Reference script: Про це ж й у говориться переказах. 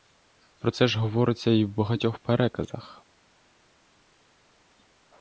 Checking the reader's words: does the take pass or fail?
fail